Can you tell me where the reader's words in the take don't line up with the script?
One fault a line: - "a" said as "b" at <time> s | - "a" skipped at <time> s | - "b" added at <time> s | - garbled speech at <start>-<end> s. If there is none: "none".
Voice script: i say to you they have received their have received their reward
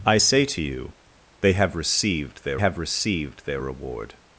none